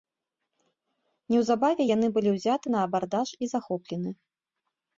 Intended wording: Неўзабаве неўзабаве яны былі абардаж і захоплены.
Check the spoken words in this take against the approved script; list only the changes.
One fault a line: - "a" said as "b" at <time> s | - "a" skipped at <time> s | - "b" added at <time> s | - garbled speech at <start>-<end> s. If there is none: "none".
- "неўзабаве" skipped at 1.8 s
- "ўзяты на" added at 2.4 s